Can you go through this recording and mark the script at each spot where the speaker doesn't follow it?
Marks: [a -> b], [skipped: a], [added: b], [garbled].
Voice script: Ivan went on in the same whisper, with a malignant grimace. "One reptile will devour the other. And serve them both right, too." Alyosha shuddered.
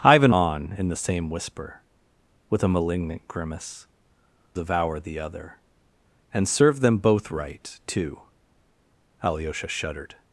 Ivan [skipped: went] on in the same whisper, with a malignant grimace. [skipped: "One reptile will] devour the other. And serve them both right, too." Alyosha shuddered.